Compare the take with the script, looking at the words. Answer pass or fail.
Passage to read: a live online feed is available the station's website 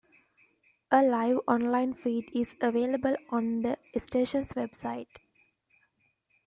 fail